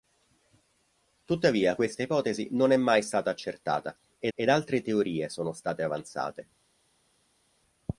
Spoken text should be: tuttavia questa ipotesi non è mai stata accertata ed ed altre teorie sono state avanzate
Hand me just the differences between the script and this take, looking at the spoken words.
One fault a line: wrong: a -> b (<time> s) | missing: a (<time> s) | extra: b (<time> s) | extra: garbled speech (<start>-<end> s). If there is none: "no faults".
no faults